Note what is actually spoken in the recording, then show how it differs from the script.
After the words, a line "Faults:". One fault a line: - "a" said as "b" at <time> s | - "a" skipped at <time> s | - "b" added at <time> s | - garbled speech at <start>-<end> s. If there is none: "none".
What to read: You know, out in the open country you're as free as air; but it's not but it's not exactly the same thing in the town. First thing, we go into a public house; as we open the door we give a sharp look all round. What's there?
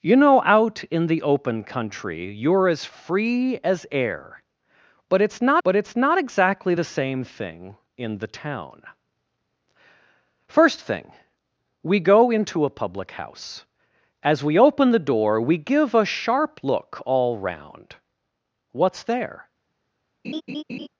You know, out in the open country you're as free as air; but it's not but it's not exactly the same thing in the town. First thing, we go into a public house; as we open the door we give a sharp look all round. What's there?
Faults:
none